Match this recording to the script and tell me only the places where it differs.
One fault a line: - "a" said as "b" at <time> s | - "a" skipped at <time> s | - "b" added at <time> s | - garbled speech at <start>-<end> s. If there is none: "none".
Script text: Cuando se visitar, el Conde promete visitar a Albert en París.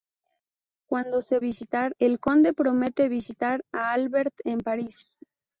none